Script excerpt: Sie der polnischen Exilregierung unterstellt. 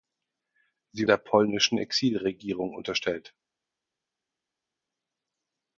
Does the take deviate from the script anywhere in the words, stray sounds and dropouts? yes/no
no